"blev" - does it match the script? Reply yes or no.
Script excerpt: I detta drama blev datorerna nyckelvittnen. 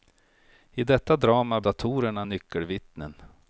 no